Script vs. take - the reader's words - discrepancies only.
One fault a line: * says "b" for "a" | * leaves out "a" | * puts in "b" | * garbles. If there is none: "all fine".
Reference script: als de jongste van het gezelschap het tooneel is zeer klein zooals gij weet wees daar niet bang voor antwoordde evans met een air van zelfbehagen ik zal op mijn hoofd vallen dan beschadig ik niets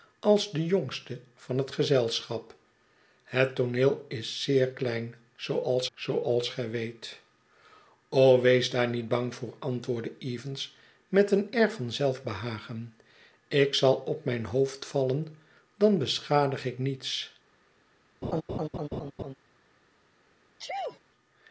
* puts in "zooals"